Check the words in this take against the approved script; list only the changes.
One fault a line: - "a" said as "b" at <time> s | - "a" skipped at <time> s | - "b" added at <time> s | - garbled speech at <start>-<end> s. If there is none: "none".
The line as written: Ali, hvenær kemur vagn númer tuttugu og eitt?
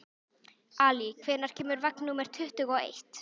none